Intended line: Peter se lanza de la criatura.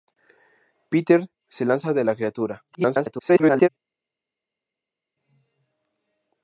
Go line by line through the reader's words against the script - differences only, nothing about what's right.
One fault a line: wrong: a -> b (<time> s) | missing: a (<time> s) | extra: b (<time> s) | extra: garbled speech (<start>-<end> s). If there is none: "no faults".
extra: garbled speech (2.7-3.7 s)